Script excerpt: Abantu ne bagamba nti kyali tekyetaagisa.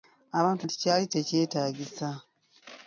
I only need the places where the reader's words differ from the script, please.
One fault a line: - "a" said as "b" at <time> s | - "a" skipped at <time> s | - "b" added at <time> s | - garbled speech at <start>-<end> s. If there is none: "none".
- "ne bagamba" skipped at 0.7 s